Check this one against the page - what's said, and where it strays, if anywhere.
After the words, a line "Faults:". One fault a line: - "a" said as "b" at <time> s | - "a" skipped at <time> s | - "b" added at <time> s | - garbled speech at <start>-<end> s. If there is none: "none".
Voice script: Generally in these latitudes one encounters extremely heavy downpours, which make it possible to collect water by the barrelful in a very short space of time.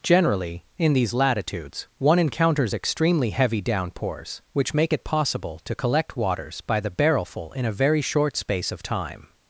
Generally in these latitudes one encounters extremely heavy downpours, which make it possible to collect waters by the barrelful in a very short space of time.
Faults:
- "water" said as "waters" at 6.2 s